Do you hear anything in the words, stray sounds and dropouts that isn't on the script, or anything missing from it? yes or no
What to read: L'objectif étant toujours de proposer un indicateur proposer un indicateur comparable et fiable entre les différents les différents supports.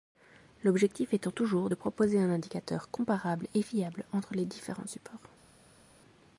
yes